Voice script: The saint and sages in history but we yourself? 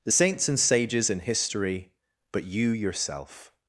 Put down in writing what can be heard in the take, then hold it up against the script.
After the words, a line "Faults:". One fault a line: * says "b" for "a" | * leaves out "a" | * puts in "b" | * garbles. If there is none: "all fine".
The saints and sages in history but you yourself?
Faults:
* says "saints" for "saint"
* says "you" for "we"